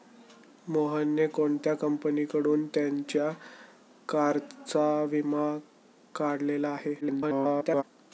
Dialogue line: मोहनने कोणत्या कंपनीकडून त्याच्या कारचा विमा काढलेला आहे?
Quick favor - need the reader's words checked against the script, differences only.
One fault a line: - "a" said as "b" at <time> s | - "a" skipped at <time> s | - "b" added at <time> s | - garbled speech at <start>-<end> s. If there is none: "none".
- garbled speech at 7.0-7.8 s